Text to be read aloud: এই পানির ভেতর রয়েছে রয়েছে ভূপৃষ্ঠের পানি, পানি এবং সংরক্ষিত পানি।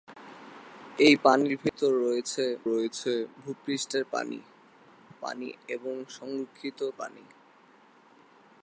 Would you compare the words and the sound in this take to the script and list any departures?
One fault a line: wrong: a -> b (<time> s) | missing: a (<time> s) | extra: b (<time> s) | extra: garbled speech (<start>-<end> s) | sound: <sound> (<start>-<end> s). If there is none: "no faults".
sound: dropout (1.7-1.7 s)